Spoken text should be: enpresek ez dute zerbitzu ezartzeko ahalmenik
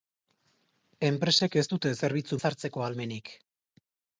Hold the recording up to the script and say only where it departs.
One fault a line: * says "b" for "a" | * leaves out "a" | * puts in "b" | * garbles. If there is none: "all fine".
all fine